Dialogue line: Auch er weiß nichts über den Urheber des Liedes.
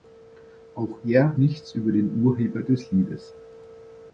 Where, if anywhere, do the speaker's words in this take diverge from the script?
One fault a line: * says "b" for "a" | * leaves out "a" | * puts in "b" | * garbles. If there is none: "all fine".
* leaves out "weiß"